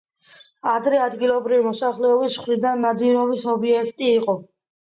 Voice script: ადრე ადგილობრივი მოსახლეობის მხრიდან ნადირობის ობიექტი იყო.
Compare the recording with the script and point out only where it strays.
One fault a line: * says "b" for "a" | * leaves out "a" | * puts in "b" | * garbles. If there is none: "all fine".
all fine